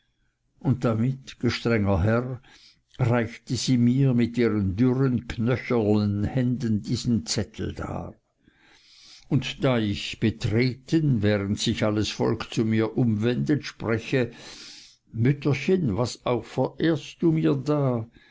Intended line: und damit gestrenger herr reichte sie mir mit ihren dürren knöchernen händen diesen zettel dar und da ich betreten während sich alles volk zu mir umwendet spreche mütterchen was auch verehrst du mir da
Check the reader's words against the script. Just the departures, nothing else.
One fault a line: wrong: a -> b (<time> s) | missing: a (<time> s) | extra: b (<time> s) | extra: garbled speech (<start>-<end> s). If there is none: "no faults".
no faults